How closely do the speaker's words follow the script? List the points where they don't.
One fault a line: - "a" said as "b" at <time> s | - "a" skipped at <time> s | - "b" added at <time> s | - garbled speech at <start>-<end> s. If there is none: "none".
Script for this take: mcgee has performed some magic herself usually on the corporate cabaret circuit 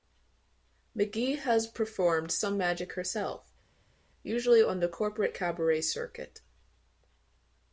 none